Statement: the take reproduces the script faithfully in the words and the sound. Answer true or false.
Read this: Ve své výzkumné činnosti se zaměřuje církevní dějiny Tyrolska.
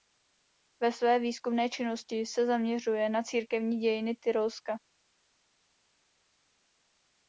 false